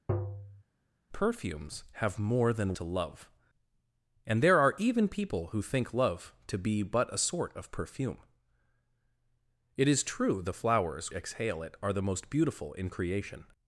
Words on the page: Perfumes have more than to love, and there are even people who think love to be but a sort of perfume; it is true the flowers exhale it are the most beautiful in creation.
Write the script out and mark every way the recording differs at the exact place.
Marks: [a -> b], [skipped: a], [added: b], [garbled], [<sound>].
[tap] Perfumes have more than to love, and there are even people who think love to be but a sort of perfume; it is true the flowers exhale it are the most beautiful in creation.